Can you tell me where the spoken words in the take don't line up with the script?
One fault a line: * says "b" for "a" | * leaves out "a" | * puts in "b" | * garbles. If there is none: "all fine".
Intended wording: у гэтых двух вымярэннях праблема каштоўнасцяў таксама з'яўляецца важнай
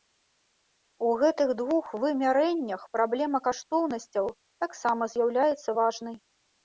all fine